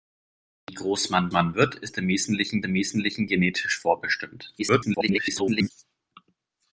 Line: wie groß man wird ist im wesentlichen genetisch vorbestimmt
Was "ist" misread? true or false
false